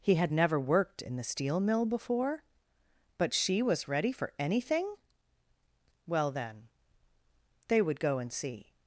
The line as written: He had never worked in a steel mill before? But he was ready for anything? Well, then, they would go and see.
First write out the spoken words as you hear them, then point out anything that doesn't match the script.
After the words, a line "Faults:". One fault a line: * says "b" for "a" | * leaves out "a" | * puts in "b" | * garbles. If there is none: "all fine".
He had never worked in the steel mill before? But she was ready for anything? Well, then, they would go and see.
Faults:
* says "the" for "a"
* says "she" for "he"